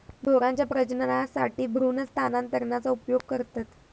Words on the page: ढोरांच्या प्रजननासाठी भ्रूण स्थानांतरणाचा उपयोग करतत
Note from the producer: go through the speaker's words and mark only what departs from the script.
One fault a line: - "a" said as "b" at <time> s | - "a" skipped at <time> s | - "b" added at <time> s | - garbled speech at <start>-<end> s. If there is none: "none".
none